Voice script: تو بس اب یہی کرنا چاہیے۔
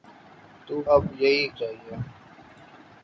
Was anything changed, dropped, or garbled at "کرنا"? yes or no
yes